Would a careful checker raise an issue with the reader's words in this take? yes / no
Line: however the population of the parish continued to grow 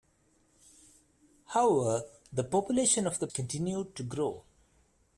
yes